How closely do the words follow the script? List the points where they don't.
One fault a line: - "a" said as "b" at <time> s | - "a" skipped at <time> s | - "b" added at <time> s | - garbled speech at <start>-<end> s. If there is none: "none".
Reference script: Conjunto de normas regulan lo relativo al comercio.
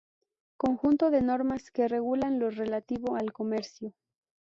- "que" added at 1.7 s